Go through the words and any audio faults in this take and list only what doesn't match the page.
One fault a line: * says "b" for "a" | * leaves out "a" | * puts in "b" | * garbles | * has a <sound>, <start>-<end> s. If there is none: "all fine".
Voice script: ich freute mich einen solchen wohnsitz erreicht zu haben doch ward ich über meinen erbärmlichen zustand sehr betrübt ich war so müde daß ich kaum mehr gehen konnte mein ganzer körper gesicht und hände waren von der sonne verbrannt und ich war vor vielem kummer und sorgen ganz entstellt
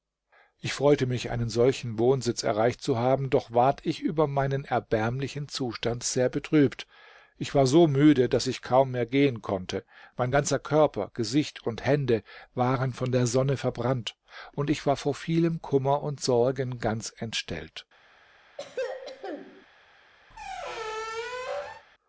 * has a throat clearing, 18.6-19.7 s
* has a squeak, 20.3-21.9 s